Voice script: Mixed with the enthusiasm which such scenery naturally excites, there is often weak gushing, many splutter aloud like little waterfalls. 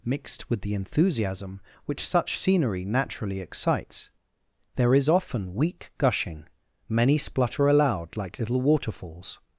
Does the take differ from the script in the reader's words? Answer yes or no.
no